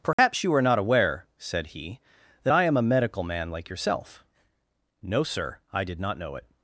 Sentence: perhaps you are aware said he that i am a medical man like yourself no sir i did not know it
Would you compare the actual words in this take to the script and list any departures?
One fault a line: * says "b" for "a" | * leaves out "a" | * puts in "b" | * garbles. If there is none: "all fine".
* puts in "not"